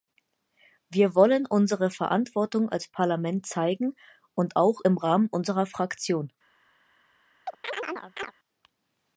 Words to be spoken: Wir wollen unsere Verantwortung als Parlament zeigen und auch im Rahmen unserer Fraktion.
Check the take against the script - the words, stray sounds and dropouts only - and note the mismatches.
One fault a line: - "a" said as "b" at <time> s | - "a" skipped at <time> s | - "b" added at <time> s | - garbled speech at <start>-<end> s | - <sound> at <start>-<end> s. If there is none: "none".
- chirp at 7.5-8.3 s